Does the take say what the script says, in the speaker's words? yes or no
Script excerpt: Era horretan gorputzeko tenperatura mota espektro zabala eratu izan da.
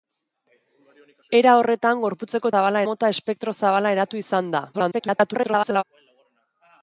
no